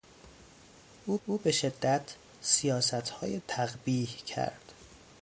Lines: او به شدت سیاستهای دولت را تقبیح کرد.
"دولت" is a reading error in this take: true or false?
true